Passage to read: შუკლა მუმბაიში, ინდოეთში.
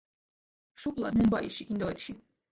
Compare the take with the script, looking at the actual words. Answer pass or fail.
pass